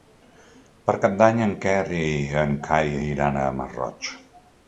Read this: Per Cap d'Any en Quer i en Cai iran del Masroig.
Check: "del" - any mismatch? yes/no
yes